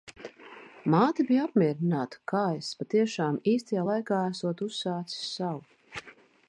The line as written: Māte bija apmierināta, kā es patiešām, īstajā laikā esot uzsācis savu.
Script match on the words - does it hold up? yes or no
yes